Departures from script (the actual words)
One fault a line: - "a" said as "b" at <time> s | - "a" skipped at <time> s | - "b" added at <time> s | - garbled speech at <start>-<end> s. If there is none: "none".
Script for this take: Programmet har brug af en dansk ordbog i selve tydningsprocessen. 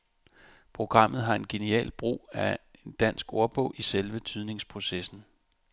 - "en genial" added at 1.4 s